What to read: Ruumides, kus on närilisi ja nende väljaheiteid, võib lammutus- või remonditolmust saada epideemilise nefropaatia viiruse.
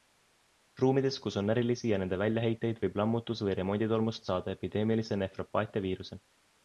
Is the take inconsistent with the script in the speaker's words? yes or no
no